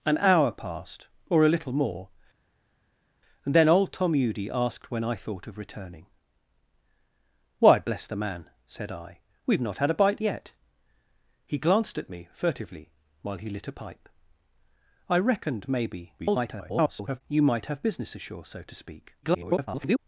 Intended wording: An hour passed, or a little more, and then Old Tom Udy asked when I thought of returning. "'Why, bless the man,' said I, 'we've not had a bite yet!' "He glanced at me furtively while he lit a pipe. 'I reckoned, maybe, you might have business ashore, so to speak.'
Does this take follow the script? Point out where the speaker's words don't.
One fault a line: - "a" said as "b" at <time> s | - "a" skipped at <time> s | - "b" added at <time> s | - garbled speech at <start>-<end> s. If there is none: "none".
- garbled speech at 16.2-17.2 s
- garbled speech at 19.2-20.0 s